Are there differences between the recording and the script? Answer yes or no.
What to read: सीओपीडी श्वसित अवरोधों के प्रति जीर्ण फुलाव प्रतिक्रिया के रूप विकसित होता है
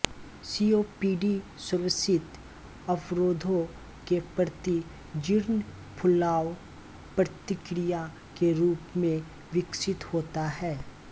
yes